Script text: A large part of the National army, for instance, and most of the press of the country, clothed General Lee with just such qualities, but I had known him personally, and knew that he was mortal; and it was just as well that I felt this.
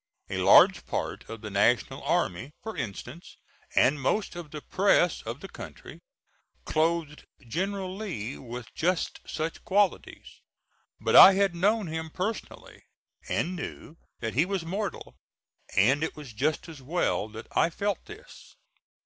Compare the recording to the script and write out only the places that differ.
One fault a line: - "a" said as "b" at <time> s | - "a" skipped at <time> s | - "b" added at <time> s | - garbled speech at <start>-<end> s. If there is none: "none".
none